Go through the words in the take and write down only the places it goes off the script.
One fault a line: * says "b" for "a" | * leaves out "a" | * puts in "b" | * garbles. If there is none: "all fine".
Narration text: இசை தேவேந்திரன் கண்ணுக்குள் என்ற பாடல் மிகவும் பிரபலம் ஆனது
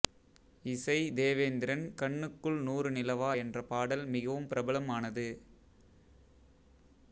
* puts in "நூறு நிலவா"